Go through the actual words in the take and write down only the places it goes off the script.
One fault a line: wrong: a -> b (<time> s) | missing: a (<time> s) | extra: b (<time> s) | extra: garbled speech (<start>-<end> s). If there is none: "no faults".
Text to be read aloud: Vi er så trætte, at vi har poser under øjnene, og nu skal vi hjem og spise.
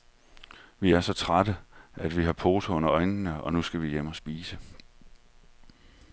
no faults